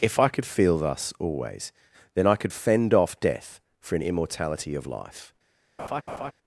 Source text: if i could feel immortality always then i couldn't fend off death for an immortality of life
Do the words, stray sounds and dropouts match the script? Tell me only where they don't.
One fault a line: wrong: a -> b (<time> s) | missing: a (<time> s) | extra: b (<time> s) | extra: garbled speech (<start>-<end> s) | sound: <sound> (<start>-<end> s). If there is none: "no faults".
wrong: immortality -> thus (0.8 s)
wrong: couldn't -> could (2.4 s)
sound: laugh (5.8-6.3 s)